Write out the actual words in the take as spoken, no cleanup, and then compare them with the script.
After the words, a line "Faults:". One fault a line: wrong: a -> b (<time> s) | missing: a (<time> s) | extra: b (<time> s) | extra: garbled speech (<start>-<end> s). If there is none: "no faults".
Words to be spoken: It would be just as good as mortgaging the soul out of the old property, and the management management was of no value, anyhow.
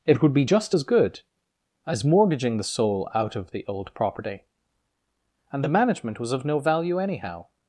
It would be just as good as mortgaging the soul out of the old property, and the management was of no value, anyhow.
Faults:
missing: management (6.2 s)